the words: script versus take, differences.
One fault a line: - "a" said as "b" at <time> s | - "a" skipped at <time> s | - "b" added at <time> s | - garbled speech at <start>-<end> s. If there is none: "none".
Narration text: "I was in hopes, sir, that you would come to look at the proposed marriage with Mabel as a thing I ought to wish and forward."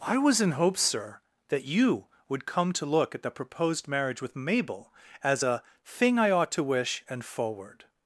none